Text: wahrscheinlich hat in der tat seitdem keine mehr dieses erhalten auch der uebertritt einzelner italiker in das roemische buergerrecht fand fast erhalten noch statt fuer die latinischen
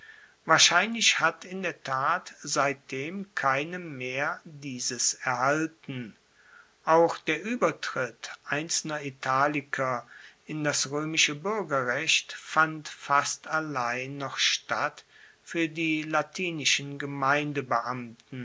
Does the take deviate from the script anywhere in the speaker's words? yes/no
yes